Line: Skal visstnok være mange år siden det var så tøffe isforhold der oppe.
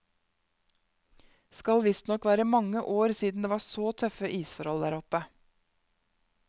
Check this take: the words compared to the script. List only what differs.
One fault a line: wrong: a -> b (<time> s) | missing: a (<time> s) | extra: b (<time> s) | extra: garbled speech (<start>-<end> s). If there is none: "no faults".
no faults